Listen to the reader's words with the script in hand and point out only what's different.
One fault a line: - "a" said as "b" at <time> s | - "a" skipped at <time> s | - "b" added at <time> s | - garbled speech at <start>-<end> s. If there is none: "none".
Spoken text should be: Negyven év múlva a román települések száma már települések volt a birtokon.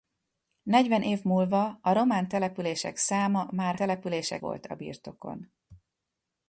none